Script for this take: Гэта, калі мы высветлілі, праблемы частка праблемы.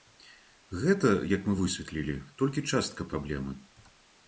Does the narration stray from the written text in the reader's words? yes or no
yes